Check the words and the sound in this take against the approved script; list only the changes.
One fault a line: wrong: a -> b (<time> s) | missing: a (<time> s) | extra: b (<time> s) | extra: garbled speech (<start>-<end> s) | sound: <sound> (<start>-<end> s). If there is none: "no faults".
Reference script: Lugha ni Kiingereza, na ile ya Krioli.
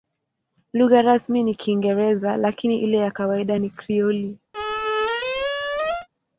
extra: rasmi (1.0 s)
wrong: na -> lakini (2.4 s)
extra: kawaida ni (3.1 s)
sound: squeak (4.5-6.1 s)